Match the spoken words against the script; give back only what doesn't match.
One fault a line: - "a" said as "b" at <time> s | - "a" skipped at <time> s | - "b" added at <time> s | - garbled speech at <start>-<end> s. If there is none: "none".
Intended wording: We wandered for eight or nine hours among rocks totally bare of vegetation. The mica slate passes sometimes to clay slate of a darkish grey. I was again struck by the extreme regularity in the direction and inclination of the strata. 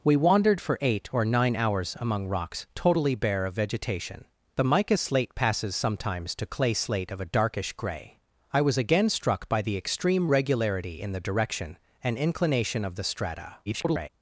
- garbled speech at 13.7-14.1 s